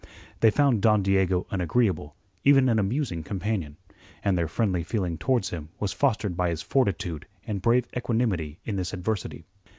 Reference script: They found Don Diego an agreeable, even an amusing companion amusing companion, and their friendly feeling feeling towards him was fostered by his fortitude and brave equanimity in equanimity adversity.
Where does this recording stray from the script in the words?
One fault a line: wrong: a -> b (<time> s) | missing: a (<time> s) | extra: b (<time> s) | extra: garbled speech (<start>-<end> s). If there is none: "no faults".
missing: amusing companion (3.8 s)
missing: feeling (5.2 s)
wrong: equanimity -> this (8.8 s)